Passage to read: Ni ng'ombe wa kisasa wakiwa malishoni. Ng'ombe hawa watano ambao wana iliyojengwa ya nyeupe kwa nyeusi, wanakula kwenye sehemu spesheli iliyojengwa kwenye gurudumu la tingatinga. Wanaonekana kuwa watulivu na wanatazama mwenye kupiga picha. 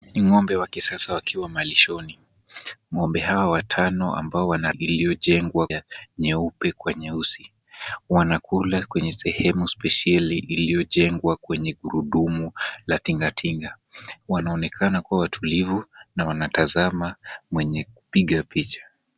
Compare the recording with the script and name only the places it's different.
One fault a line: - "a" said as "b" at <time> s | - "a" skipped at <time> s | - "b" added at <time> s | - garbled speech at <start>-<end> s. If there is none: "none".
none